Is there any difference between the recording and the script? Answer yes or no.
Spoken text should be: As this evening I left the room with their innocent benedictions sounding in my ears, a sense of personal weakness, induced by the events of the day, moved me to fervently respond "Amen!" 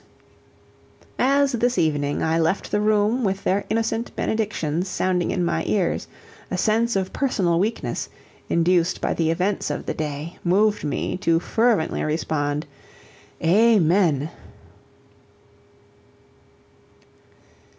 no